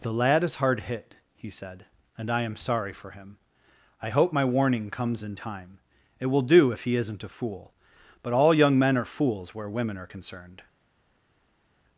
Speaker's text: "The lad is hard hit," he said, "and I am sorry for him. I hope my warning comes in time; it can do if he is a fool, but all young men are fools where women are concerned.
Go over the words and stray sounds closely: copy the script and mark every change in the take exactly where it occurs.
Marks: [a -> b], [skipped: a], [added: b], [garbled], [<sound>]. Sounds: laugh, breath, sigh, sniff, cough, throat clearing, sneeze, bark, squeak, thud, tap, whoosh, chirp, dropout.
"The lad is hard hit," he said, "and I am sorry for him. I hope my warning comes in time; it [can -> will] do if he [is -> isn't] a fool, but all young men are fools where women are concerned.